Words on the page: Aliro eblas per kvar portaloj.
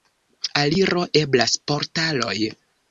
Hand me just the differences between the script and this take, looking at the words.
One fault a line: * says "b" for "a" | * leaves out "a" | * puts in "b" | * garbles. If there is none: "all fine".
* leaves out "per kvar"